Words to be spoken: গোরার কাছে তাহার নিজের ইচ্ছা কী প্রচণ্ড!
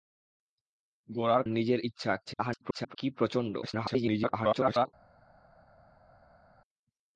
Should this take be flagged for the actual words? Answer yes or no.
yes